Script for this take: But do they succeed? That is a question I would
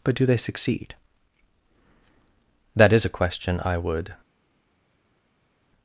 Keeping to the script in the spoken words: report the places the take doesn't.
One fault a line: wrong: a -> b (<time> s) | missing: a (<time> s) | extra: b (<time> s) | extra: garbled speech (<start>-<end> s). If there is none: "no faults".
no faults